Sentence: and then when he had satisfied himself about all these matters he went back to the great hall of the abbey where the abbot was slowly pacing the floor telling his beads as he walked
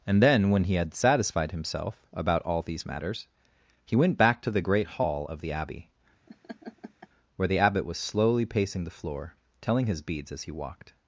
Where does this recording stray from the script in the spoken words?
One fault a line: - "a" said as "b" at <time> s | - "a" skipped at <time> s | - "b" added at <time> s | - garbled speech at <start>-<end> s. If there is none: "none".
none